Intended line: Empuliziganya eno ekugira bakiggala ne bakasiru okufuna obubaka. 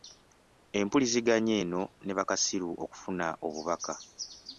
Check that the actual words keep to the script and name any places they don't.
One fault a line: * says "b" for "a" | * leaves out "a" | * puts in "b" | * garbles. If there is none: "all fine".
* leaves out "ekugira bakiggala"